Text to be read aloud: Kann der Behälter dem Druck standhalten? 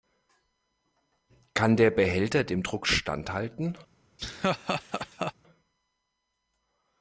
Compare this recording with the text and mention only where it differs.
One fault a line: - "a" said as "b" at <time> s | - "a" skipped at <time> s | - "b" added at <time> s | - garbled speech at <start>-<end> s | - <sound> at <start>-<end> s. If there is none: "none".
- laugh at 4.2-5.3 s